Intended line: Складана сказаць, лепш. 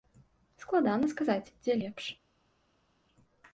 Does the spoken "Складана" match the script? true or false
true